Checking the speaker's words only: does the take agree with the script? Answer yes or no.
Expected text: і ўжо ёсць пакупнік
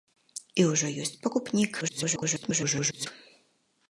no